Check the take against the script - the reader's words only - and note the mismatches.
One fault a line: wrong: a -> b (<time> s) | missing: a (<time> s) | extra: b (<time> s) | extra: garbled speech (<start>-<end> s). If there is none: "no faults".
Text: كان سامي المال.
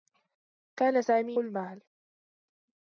no faults